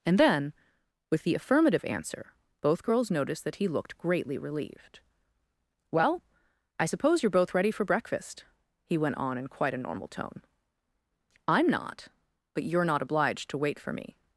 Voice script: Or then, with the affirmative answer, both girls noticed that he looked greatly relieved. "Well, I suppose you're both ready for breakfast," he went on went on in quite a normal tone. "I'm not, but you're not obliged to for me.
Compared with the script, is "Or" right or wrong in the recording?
wrong